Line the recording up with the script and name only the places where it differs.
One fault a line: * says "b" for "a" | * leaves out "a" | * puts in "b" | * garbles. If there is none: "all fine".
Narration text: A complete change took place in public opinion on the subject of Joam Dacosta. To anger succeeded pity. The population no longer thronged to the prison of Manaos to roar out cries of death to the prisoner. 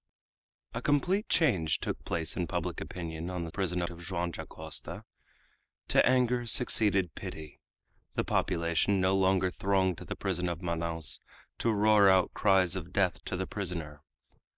* says "prison" for "subject"